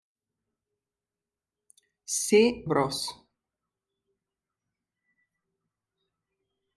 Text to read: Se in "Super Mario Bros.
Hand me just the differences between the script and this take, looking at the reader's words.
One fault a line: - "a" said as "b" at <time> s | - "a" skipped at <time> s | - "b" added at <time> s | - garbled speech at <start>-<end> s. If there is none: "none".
- "in Super Mario" skipped at 2.6 s